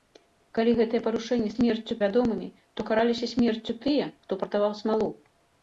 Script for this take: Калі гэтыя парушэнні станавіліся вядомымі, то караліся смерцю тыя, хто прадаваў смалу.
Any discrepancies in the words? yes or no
yes